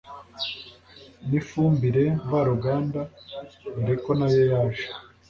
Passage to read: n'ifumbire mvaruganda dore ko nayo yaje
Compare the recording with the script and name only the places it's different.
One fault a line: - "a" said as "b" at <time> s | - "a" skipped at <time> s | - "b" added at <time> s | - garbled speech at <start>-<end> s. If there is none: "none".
none